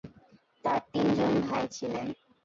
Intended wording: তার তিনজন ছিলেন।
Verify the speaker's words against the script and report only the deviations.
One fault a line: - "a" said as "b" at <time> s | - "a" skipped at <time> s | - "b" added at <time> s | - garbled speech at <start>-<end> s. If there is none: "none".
- "ভাই" added at 1.4 s